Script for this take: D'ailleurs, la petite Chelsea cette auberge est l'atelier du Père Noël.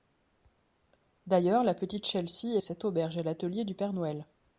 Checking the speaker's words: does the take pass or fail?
pass